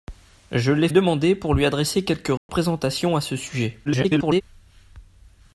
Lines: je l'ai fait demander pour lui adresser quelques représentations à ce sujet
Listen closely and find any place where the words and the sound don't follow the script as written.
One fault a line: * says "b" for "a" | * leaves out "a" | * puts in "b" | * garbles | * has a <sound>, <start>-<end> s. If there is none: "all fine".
* leaves out "fait"
* has a dropout, 2.4-2.5 s
* garbles